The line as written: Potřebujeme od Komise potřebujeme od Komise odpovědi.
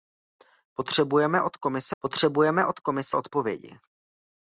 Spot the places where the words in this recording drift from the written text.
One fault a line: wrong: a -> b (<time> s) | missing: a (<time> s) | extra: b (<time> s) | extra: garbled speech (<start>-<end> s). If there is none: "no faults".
no faults